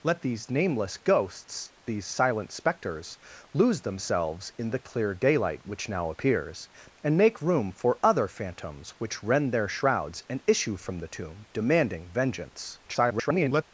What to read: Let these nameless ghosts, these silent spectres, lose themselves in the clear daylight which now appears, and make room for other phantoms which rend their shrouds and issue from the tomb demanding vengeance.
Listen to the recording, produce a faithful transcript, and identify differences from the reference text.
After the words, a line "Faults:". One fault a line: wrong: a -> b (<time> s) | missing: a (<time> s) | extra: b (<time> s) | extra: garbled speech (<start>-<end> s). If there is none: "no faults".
Let these nameless ghosts, these silent spectres, lose themselves in the clear daylight which now appears, and make room for other phantoms which rend their shrouds and issue from the tomb demanding vengeance. [garbled]
Faults:
extra: garbled speech (12.9-13.6 s)